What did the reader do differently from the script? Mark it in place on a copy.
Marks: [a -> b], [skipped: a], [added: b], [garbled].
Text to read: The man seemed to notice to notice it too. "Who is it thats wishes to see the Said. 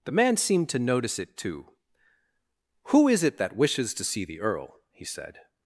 The man seemed to notice [skipped: to notice] it too. "Who is it [thats -> that] wishes to see the [added: Earl he] Said.